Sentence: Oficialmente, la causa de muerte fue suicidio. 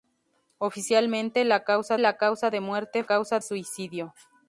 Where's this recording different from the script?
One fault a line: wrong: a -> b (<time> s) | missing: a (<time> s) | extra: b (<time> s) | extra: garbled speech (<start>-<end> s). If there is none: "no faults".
extra: la causa (2.0 s)
wrong: fue -> causa (3.0 s)